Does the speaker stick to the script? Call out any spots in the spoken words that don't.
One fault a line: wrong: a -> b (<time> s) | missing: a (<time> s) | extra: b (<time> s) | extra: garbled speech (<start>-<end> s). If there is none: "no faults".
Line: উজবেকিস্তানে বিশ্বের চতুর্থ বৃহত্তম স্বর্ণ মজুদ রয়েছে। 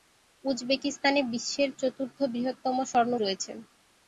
missing: মজুদ (3.1 s)